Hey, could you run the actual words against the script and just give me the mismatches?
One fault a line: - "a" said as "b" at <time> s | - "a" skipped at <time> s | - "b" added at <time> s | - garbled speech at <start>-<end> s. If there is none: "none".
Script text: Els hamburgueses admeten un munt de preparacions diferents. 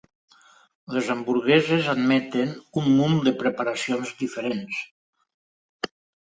- "Els" said as "Les" at 0.9 s